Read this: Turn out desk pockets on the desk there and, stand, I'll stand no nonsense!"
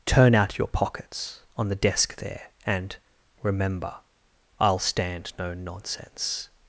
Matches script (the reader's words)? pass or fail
fail